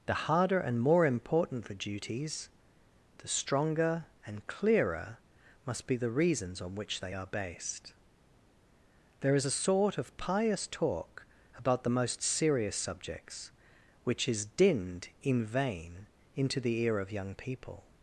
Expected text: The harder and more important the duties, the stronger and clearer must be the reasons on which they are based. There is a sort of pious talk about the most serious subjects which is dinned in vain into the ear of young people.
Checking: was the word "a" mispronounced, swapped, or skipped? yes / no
no